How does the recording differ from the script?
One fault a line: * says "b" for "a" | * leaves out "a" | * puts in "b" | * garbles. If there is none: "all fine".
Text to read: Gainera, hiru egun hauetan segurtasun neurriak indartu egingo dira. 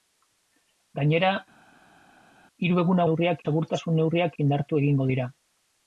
* says "neurriak" for "hauetan"